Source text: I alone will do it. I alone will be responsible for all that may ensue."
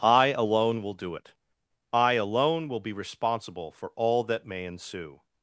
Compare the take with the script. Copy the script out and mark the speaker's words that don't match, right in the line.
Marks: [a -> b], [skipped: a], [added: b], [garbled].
I alone will do it. I alone will be responsible for all that may ensue."